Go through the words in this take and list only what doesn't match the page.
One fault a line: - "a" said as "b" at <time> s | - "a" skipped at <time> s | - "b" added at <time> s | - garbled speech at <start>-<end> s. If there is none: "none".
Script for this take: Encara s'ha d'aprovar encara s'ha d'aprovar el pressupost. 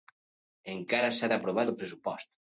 - "encara s'ha d'aprovar" skipped at 1.7 s